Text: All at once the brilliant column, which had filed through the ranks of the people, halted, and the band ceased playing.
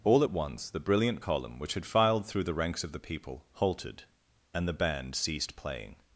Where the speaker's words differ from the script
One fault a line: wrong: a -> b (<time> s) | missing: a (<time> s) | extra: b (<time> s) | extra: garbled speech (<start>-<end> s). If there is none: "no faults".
no faults